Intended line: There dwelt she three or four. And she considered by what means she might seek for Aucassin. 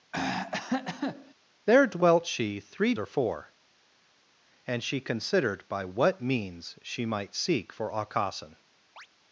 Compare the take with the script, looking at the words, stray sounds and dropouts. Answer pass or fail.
fail